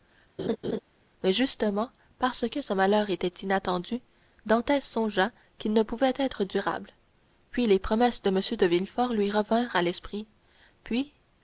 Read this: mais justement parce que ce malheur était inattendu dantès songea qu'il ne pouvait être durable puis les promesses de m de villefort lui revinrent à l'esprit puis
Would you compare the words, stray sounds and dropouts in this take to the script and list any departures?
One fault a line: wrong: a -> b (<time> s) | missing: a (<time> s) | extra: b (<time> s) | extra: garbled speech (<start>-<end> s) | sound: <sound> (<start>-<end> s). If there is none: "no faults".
sound: laugh (0.4-0.8 s)